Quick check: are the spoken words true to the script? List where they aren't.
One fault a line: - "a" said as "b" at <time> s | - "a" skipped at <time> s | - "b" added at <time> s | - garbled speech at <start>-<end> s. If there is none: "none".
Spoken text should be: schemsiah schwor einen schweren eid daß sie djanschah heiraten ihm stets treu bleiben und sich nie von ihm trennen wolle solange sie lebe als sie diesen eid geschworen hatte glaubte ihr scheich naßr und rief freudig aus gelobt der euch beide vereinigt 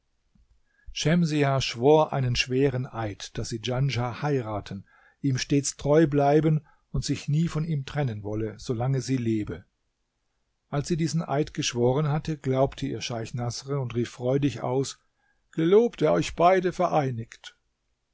none